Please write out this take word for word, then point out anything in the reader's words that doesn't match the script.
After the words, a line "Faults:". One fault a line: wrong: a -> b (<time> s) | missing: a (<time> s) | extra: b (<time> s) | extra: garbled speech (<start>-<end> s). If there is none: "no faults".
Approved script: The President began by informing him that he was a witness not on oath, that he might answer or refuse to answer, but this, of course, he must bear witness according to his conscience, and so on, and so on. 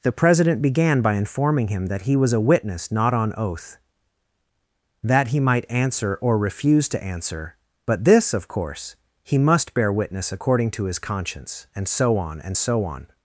The President began by informing him that he was a witness not on oath, that he might answer or refuse to answer, but this, of course, he must bear witness according to his conscience, and so on, and so on.
Faults:
no faults